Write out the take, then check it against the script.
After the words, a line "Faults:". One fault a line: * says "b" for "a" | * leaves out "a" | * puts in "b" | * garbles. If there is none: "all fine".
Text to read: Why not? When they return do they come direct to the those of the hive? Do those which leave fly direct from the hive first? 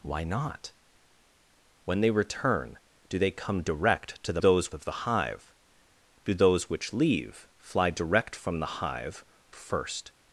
Why not? When they return do they come direct to the those of the hive? Do those which leave fly direct from the hive first?
Faults:
all fine